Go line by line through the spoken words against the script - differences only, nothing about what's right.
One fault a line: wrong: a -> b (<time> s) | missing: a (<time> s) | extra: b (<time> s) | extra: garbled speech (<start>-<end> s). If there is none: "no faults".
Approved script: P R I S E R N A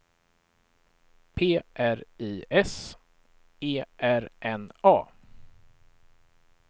no faults